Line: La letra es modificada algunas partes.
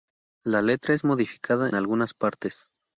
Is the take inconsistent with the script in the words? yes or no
no